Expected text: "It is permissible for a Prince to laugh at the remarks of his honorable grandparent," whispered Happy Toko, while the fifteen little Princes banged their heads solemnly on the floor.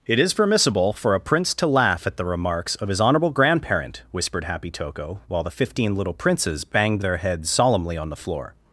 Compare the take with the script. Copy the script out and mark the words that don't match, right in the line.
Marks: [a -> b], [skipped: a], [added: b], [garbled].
"It is permissible for a Prince to laugh at the remarks of his honorable grandparent," whispered Happy Toko, while the fifteen little Princes banged their heads solemnly on the floor.